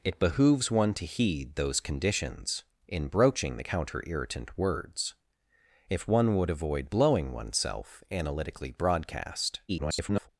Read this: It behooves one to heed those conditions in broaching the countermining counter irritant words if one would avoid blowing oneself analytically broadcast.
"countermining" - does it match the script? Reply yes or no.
no